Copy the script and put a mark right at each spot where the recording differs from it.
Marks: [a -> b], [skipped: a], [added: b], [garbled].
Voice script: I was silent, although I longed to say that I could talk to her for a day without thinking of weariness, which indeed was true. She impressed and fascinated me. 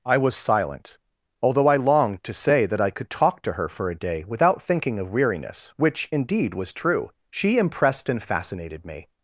I was silent, although I longed to say that I could talk to her for a day without thinking of weariness, which indeed was true. She impressed and fascinated me.